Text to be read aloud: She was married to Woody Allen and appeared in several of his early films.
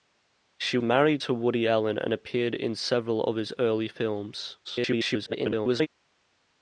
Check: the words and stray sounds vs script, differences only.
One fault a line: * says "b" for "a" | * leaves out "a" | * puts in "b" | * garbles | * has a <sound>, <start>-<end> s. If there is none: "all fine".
* leaves out "was"
* garbles